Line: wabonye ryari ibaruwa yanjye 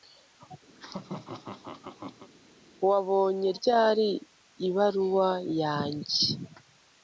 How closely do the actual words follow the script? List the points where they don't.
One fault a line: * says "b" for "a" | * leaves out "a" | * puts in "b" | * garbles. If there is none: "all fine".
all fine